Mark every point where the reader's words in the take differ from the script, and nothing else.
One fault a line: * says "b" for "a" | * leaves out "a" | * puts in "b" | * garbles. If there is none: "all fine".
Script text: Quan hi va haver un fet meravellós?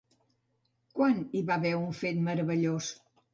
all fine